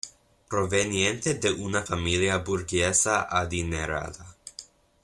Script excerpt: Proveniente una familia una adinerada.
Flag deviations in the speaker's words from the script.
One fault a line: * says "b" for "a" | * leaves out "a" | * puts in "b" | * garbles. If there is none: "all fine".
* puts in "de"
* says "burguesa" for "una"